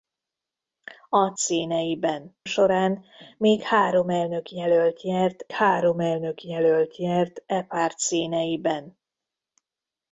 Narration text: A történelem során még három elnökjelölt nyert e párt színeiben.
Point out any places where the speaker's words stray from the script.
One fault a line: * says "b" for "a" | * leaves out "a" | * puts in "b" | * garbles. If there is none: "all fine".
* says "színeiben" for "történelem"
* puts in "három elnökjelölt nyert"